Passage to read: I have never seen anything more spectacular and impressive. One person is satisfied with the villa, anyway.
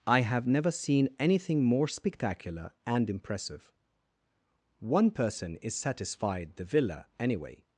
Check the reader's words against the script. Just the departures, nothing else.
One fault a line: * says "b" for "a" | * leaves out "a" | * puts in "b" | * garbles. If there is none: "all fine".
* leaves out "with"